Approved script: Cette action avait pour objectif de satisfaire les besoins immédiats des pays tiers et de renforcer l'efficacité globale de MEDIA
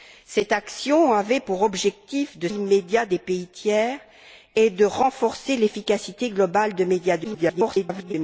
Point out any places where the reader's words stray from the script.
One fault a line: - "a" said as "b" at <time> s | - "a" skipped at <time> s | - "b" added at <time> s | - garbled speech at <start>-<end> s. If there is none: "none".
- "satisfaire les besoins" skipped at 2.5 s
- garbled speech at 7.2-8.1 s